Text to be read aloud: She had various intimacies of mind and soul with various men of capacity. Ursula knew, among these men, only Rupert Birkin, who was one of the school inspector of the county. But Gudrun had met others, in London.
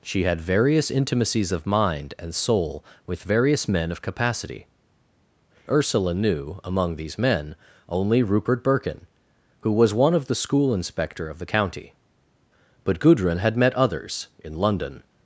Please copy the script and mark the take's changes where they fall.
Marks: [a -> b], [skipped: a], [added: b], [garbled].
She had various intimacies of mind and soul with various men of capacity. Ursula knew, among these men, only Rupert Birkin, who was one of the school inspector of the county. But Gudrun had met others, in London.